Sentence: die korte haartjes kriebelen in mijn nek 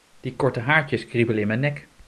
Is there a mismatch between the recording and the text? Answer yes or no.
no